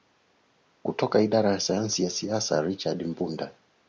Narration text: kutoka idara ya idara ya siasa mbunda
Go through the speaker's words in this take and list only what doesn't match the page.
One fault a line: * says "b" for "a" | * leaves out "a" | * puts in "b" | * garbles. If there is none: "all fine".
* says "sayansi" for "idara"
* puts in "richard"